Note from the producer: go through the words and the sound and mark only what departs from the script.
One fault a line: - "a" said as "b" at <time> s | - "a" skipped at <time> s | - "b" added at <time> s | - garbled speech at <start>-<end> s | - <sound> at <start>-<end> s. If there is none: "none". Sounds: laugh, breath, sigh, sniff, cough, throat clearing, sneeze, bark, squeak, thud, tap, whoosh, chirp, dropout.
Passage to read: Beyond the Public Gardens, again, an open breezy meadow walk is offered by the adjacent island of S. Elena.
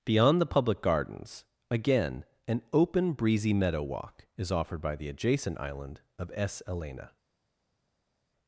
none